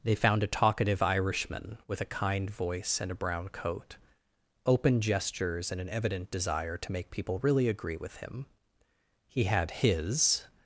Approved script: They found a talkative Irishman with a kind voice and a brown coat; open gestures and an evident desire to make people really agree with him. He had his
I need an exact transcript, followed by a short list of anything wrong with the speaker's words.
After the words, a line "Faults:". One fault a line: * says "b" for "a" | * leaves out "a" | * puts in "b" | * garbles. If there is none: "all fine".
They found a talkative Irishman with a kind voice and a brown coat; open gestures and an evident desire to make people really agree with him. He had his
Faults:
all fine